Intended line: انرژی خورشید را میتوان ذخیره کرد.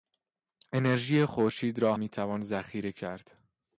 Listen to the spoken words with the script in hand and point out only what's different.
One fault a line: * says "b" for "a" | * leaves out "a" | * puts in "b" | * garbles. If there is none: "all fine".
all fine